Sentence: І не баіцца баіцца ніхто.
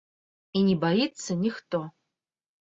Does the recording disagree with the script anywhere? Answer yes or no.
yes